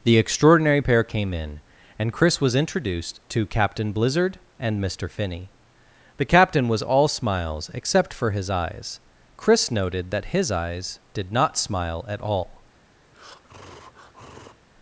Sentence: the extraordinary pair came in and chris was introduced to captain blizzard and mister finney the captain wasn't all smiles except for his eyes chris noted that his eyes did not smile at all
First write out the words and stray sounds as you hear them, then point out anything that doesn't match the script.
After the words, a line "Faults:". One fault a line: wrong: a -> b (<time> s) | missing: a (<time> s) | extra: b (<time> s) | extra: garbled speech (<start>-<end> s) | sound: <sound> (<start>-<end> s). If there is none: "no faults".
the extraordinary pair came in and chris was introduced to captain blizzard and mister finney the captain was all smiles except for his eyes chris noted that his eyes did not smile at all
Faults:
wrong: wasn't -> was (6.7 s)
sound: breath (13.0-14.6 s)